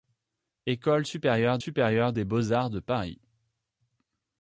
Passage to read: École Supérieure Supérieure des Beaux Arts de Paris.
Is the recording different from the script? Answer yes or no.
no